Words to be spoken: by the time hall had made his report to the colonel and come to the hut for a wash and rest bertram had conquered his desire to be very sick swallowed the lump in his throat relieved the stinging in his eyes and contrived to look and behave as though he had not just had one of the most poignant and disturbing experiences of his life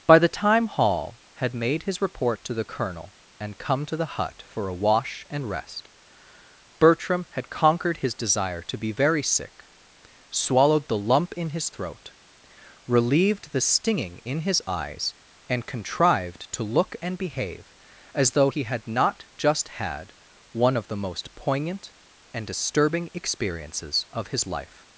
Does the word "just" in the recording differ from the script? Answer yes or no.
no